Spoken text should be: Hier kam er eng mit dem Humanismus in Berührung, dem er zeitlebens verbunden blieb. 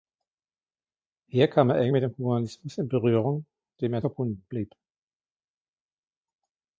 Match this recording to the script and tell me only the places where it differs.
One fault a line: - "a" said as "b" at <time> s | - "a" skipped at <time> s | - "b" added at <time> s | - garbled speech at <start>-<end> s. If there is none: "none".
- "zeitlebens" skipped at 4.1 s